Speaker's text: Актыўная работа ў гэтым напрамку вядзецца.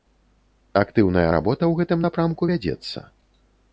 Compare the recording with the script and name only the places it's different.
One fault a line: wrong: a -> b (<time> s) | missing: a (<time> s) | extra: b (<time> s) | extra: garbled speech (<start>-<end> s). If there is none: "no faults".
no faults